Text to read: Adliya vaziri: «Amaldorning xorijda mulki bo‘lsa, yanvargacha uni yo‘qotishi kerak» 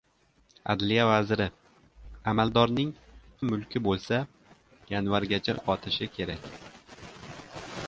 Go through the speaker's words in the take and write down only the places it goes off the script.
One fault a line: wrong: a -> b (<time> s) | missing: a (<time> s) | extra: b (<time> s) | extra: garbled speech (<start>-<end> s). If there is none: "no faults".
missing: xorijda (2.9 s)
missing: uni (5.6 s)